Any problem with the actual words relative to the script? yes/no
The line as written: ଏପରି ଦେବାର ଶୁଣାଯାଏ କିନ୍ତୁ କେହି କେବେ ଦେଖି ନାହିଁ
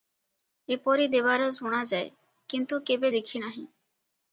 yes